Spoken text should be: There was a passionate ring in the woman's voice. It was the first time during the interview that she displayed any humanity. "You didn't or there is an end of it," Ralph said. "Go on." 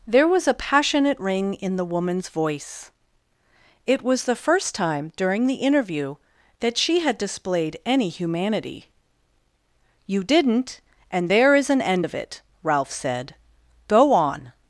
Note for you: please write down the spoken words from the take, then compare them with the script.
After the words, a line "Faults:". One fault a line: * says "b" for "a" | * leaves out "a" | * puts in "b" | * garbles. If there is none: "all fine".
There was a passionate ring in the woman's voice. It was the first time during the interview that she had displayed any humanity. "You didn't and there is an end of it," Ralph said. "Go on."
Faults:
* puts in "had"
* says "and" for "or"